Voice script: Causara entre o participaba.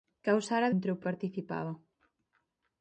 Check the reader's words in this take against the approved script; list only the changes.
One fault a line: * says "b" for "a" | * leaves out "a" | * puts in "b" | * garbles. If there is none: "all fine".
all fine